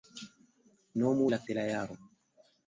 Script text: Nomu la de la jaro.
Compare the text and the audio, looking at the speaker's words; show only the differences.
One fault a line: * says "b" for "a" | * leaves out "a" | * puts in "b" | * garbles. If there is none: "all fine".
all fine